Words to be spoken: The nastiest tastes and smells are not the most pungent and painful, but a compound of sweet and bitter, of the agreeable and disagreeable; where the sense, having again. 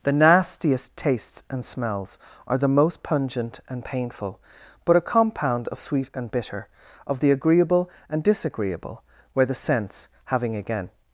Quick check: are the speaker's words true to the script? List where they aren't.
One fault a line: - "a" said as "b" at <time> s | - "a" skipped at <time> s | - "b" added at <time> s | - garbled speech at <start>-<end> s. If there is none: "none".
- "not" skipped at 2.6 s